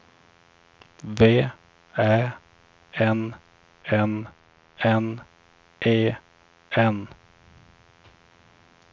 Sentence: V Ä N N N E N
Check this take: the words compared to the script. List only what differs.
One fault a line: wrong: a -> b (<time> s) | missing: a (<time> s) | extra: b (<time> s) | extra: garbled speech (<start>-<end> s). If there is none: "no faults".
no faults